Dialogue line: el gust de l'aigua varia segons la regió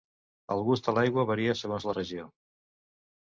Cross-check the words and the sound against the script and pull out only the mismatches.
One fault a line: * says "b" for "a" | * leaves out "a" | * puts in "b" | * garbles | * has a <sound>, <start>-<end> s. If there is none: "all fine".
all fine